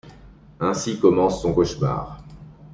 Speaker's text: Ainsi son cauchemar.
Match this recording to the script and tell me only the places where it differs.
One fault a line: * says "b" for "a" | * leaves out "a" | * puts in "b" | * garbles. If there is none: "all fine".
* puts in "commence"